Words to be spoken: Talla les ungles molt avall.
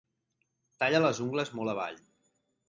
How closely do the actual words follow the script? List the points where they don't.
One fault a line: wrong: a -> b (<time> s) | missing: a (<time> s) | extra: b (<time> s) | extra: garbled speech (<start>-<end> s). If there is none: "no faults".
no faults